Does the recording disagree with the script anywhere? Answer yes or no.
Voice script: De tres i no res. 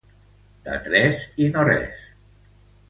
no